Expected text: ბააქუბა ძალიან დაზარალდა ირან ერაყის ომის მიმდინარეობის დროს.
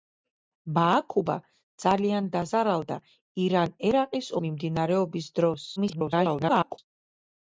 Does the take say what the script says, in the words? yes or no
no